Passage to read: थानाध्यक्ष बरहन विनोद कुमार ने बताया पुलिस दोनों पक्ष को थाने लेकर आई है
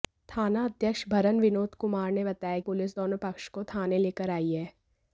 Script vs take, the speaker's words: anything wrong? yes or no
no